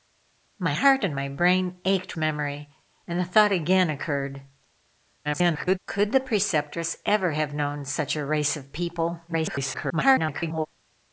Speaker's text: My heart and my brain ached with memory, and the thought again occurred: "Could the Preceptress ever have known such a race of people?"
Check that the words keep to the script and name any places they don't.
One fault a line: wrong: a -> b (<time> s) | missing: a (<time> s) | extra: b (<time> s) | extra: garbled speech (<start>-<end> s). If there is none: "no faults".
missing: with (2.1 s)
extra: garbled speech (5.2-5.8 s)
extra: garbled speech (9.3-10.7 s)